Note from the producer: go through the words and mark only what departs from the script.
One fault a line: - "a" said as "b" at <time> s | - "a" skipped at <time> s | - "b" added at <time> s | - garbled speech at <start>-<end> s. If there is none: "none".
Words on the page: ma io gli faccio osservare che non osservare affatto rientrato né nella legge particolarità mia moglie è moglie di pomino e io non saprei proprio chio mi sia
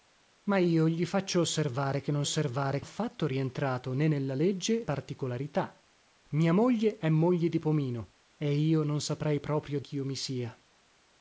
none